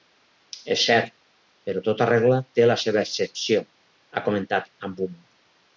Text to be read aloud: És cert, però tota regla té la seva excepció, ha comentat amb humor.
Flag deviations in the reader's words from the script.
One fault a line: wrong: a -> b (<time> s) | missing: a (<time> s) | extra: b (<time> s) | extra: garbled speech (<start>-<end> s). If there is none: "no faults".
no faults